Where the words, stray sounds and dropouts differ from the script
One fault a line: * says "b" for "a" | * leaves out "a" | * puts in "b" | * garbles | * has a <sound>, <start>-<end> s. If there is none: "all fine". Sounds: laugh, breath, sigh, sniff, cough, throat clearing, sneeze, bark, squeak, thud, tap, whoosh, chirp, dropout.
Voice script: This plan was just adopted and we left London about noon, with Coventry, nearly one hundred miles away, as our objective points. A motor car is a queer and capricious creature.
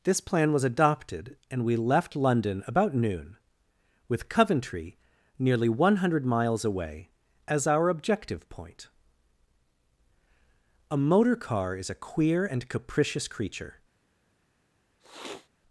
* leaves out "just"
* says "point" for "points"
* has a sniff, 15.0-15.5 s